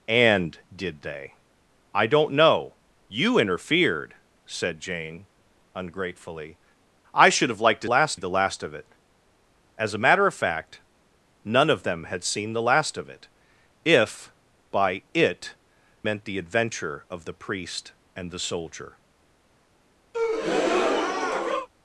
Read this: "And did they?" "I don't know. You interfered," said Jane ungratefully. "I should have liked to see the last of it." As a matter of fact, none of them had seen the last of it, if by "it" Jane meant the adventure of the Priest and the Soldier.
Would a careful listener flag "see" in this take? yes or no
yes